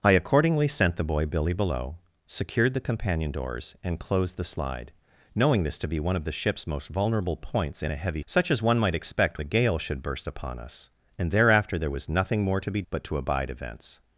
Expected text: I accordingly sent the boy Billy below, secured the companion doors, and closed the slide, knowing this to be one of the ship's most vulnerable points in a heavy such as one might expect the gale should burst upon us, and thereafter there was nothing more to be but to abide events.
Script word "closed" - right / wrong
right